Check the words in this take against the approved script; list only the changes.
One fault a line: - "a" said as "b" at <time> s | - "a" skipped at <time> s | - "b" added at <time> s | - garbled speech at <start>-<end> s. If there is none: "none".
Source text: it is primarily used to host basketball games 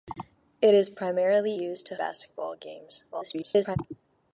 - "host" skipped at 2.0 s
- garbled speech at 3.1-3.8 s